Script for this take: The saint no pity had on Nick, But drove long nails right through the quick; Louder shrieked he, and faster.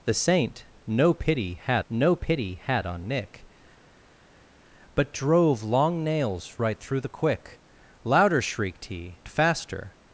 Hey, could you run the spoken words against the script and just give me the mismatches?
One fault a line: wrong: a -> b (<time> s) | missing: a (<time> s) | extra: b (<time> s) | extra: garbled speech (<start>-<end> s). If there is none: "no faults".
extra: no pity had (1.9 s)
missing: and (9.2 s)